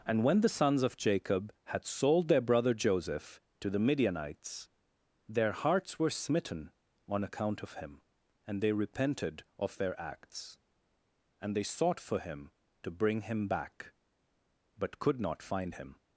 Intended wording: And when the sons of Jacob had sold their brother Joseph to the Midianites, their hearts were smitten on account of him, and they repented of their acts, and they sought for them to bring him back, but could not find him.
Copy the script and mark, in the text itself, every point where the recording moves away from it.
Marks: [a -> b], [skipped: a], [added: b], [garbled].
And when the sons of Jacob had sold their brother Joseph to the Midianites, their hearts were smitten on account of him, and they repented of their acts, and they sought for [them -> him] to bring him back, but could not find him.